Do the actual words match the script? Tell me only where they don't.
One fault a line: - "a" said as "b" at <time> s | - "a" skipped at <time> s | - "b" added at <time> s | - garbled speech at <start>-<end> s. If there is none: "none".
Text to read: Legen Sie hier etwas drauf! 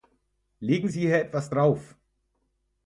none